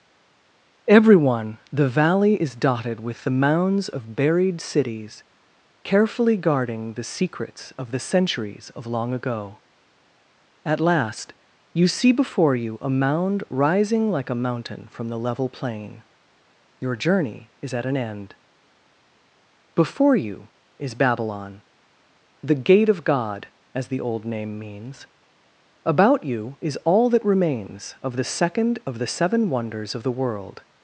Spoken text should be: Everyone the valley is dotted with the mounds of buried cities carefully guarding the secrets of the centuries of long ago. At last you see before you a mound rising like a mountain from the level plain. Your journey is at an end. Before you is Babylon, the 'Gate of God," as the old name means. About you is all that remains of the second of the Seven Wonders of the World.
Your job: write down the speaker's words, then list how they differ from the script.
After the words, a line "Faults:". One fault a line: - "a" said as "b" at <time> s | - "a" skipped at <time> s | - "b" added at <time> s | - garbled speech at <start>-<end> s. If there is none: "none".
Everyone the valley is dotted with the mounds of buried cities carefully guarding the secrets of the centuries of long ago. At last you see before you a mound rising like a mountain from the level plain. Your journey is at an end. Before you is Babylon, the 'Gate of God," as the old name means. About you is all that remains of the second of the Seven Wonders of the World.
Faults:
none